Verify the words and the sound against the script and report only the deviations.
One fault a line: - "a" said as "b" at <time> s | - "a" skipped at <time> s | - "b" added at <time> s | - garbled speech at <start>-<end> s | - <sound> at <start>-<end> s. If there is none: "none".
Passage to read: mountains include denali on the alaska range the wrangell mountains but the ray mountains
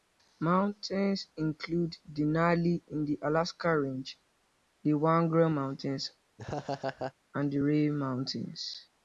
- "on" said as "in" at 2.9 s
- laugh at 6.4-7.1 s
- "but" said as "and" at 7.3 s